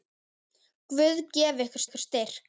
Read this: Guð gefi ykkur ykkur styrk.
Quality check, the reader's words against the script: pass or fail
pass